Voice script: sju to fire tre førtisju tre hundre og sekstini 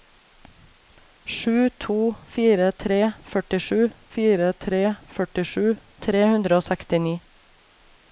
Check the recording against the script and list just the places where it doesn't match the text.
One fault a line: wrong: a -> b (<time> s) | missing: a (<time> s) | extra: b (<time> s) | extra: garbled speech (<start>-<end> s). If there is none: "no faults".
extra: fire tre førtisju (4.2 s)